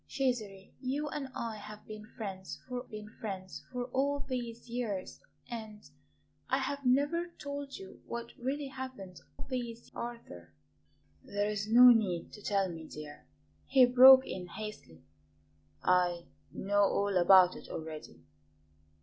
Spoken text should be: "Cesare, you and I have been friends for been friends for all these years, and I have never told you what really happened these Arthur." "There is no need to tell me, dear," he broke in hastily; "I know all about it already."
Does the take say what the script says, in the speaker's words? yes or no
yes